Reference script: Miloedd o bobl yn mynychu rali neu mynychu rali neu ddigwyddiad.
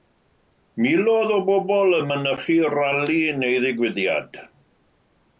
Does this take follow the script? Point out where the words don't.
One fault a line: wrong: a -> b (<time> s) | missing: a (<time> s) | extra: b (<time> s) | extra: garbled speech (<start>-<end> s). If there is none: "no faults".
missing: mynychu rali neu (3.6 s)